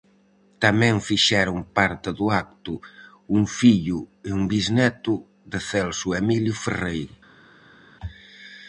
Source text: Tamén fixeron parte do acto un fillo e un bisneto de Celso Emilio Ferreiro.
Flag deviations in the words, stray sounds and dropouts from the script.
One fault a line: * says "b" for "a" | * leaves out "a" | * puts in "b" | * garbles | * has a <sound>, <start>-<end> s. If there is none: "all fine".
all fine